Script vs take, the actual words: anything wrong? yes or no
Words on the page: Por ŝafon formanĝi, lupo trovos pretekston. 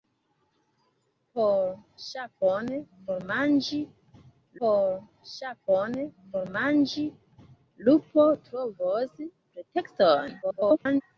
yes